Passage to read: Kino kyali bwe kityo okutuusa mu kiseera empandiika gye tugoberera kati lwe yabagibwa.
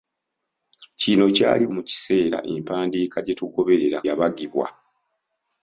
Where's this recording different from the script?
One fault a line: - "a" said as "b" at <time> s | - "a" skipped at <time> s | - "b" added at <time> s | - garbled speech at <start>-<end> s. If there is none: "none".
- "bwe kityo okutuusa" skipped at 1.6 s
- "kati lwe" skipped at 4.0 s